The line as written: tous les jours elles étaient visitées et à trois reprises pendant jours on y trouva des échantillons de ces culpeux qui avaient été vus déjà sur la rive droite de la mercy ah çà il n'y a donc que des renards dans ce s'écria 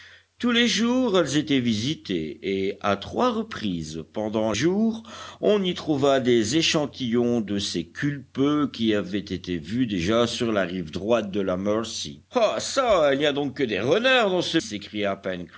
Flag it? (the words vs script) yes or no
no